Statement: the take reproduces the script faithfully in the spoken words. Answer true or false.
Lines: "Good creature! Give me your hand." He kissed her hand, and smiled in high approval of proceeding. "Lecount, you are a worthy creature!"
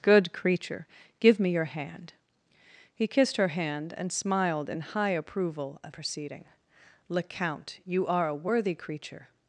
true